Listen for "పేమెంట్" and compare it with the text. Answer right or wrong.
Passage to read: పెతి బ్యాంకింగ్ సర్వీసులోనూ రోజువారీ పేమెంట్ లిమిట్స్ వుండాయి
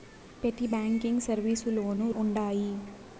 wrong